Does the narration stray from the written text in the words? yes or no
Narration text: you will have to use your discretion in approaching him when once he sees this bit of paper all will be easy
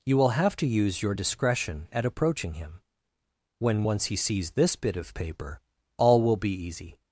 yes